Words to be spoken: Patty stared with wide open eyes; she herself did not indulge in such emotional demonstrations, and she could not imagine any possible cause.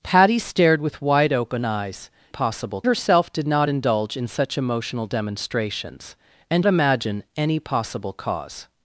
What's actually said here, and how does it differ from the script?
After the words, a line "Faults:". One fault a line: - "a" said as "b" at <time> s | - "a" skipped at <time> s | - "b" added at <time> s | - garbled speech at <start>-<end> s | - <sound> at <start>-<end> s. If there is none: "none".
Patty stared with wide open eyes; possible herself did not indulge in such emotional demonstrations, and imagine any possible cause.
Faults:
- "she" said as "possible" at 2.3 s
- "she could not" skipped at 6.7 s